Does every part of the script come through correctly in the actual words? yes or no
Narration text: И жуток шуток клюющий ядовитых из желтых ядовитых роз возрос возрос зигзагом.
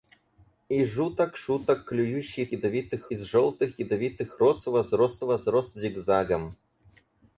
yes